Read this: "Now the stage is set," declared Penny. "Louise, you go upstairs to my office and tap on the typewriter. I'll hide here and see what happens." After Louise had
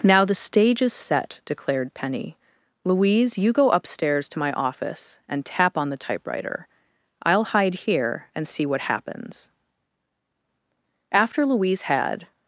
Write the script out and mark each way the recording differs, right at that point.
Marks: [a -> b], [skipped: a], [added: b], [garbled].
"Now the stage is set," declared Penny. "Louise, you go upstairs to my office and tap on the typewriter. I'll hide here and see what happens." After Louise had